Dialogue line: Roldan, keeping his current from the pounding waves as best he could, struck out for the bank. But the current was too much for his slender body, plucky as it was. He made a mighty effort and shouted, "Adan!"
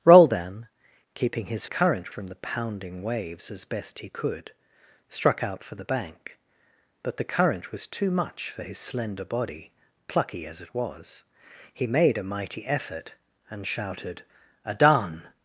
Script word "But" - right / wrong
right